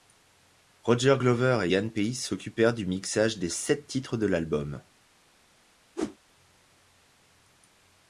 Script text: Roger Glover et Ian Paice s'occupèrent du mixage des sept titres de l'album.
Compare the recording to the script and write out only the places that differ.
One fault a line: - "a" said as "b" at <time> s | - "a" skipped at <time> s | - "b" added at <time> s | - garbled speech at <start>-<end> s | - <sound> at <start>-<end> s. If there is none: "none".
- whoosh at 6.0-6.2 s